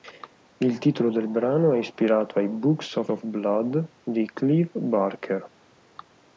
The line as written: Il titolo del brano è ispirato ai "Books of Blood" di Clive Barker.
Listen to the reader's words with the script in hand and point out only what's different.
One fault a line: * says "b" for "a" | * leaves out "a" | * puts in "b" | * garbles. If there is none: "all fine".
* puts in "of"